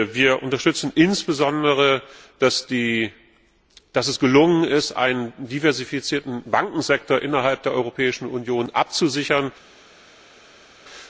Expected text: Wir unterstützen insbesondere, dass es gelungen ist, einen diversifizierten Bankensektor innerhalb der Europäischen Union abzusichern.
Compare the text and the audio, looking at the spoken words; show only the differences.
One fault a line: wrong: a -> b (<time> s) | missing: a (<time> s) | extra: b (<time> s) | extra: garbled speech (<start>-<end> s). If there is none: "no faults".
no faults